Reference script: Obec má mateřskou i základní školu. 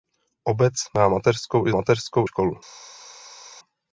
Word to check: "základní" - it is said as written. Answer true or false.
false